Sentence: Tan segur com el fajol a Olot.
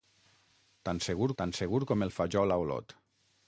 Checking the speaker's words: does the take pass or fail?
fail